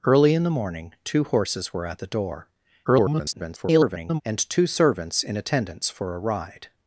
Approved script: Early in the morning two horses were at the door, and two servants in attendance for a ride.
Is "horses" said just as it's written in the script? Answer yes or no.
yes